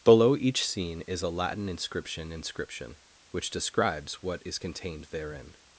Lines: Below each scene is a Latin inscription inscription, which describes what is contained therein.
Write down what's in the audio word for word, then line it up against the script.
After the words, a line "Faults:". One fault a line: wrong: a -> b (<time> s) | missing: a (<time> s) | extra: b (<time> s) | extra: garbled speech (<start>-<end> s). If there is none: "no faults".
Below each scene is a Latin inscription inscription, which describes what is contained therein.
Faults:
no faults